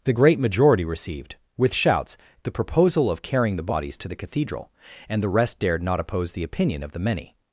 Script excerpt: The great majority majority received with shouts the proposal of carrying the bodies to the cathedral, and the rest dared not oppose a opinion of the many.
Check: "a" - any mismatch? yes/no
yes